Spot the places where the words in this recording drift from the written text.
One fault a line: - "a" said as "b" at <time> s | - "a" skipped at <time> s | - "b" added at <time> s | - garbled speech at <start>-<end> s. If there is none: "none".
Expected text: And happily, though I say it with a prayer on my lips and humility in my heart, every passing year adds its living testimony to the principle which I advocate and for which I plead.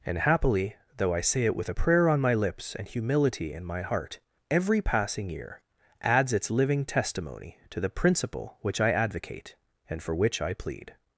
none